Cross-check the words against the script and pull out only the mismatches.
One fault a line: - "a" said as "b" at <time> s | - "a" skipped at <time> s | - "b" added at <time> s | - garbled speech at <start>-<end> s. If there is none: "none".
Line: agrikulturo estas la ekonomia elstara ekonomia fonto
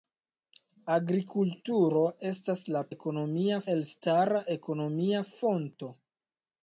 none